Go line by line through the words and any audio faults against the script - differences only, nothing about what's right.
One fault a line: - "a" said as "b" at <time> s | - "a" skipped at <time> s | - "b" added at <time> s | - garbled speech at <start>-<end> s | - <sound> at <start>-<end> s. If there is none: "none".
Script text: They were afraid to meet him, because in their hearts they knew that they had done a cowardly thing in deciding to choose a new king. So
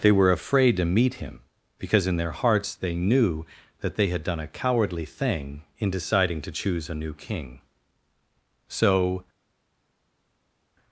none